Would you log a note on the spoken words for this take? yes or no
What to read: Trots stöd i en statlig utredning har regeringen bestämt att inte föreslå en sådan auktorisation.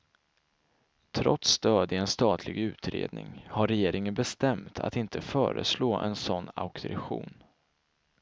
no